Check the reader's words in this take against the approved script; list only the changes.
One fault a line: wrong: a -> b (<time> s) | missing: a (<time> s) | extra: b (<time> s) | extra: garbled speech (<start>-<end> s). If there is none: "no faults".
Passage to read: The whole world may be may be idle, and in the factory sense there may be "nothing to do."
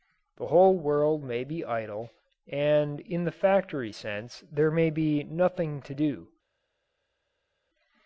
missing: may be (1.6 s)